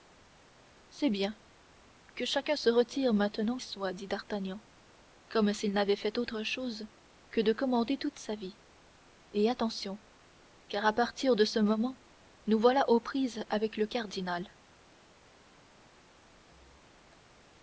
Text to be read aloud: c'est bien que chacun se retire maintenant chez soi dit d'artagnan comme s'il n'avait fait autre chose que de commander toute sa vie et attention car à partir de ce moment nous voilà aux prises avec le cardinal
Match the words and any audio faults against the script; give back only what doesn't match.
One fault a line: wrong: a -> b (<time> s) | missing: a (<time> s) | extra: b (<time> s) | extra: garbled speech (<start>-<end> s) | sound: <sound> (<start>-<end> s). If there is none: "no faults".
missing: chez (3.6 s)